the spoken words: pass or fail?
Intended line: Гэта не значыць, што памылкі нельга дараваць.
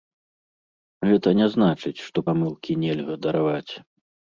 pass